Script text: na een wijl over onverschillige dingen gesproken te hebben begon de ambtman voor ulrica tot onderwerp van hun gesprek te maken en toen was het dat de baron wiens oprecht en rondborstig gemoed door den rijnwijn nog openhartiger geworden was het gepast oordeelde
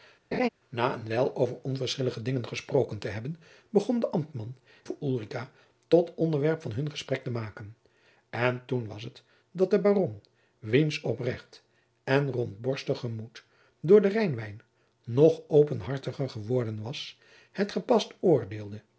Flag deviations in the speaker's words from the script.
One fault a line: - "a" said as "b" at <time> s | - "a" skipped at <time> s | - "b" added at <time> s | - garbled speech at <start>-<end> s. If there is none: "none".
none